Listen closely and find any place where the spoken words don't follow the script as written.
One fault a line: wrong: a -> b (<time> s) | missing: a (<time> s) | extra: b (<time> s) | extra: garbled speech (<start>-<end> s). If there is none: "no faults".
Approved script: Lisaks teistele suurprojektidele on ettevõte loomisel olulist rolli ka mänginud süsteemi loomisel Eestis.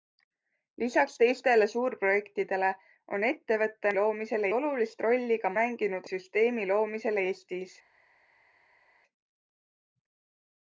no faults